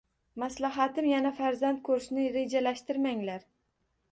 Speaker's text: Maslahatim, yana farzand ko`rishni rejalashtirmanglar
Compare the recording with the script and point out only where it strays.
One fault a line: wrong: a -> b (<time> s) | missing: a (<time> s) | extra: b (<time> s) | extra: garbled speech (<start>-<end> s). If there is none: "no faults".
no faults